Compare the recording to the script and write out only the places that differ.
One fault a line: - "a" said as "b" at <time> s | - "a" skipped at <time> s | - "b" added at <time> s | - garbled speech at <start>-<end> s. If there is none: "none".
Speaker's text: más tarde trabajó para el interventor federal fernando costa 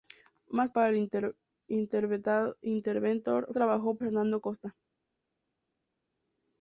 - "tarde trabajó" skipped at 0.7 s
- "federal" said as "trabajó" at 3.5 s